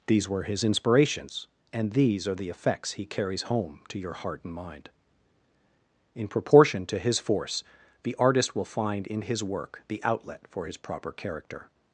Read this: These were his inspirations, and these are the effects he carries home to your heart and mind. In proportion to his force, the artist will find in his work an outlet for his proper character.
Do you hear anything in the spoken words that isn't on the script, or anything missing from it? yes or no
yes